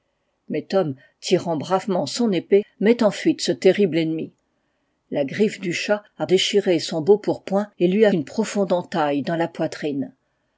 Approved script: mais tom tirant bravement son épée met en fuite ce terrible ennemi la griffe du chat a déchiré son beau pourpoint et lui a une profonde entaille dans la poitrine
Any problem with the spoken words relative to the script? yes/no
no